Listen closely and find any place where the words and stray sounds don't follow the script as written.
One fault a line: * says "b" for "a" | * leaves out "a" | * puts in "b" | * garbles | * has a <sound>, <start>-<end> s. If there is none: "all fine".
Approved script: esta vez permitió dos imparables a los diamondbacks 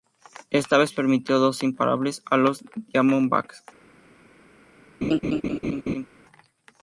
* has a laugh, 5.0-6.1 s